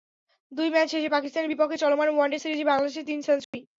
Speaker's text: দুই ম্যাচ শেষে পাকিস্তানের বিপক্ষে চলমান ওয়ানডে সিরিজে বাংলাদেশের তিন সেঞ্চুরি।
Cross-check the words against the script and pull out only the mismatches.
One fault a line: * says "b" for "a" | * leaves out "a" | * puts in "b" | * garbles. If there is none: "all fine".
all fine